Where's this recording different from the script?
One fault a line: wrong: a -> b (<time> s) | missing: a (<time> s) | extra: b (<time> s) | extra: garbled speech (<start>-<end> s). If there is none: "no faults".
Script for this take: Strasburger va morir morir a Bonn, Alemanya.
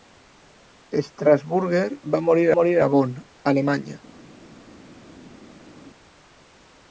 no faults